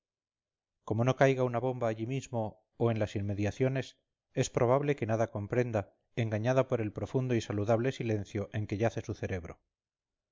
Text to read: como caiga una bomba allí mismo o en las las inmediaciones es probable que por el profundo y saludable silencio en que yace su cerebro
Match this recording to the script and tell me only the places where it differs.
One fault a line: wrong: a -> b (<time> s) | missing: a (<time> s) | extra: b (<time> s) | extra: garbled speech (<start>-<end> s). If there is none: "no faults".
extra: no (1.0 s)
missing: las (3.1 s)
extra: nada comprenda engañada (5.0 s)